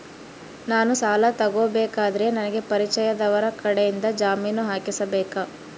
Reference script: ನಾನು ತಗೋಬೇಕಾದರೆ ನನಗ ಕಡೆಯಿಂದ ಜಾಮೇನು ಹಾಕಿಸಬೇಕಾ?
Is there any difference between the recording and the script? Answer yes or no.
yes